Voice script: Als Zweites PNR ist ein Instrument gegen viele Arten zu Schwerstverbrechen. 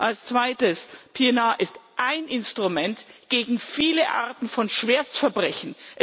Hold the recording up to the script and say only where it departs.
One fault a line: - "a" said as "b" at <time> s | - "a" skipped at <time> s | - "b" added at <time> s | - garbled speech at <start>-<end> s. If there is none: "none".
- "zu" said as "von" at 4.5 s